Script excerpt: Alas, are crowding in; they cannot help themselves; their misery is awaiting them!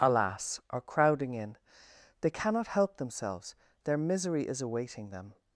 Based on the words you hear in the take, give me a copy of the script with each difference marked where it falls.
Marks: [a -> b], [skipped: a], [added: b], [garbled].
Alas, are crowding in; they cannot help themselves; their misery is awaiting them!